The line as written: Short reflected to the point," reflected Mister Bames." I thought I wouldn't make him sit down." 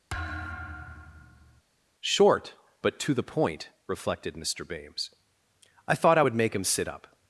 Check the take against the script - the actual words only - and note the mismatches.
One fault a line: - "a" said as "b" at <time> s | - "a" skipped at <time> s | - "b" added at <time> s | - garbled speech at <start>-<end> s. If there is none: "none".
- "reflected" said as "but" at 2.8 s
- "wouldn't" said as "would" at 6.2 s
- "down" said as "up" at 6.9 s